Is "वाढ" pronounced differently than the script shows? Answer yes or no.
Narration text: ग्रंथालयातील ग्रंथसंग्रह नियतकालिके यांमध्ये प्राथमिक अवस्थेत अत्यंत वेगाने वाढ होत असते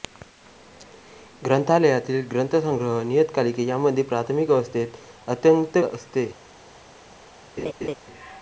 yes